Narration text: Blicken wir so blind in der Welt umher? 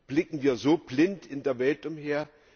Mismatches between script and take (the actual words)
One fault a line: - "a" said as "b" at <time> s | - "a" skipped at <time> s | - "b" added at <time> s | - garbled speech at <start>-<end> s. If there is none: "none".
none